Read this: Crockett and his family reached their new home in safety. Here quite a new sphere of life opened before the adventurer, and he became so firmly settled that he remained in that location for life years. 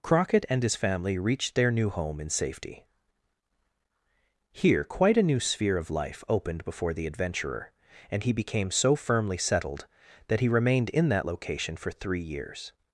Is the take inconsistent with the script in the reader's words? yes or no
yes